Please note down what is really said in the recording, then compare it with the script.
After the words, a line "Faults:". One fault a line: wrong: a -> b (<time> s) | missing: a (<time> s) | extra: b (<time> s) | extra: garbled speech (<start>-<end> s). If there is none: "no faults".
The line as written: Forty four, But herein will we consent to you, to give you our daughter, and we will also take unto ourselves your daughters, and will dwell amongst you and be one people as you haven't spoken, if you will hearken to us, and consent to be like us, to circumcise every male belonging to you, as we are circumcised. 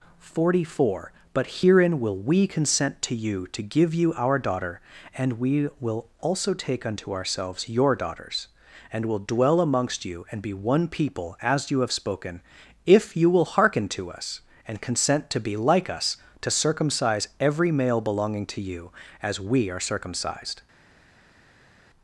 Forty four, But herein will we consent to you, to give you our daughter, and we will also take unto ourselves your daughters, and will dwell amongst you and be one people as you have spoken, if you will hearken to us, and consent to be like us, to circumcise every male belonging to you, as we are circumcised.
Faults:
wrong: haven't -> have (11.8 s)